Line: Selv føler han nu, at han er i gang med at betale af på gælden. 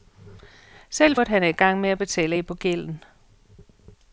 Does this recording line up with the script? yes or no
no